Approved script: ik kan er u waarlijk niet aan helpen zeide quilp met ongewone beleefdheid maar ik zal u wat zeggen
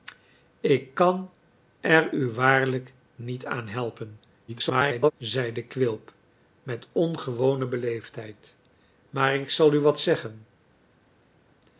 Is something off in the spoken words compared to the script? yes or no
yes